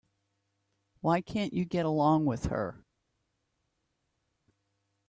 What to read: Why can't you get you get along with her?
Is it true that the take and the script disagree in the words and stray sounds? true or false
true